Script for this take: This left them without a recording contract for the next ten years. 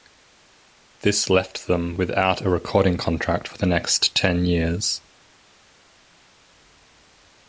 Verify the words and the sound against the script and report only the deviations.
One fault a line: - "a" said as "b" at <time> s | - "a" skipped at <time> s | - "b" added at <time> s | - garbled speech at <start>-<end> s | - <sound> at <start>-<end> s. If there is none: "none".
none